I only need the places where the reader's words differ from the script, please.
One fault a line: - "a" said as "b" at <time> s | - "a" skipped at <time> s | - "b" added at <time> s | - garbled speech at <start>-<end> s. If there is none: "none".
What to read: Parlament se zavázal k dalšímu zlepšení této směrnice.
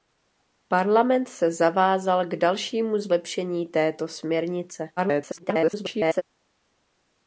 - garbled speech at 5.0-6.2 s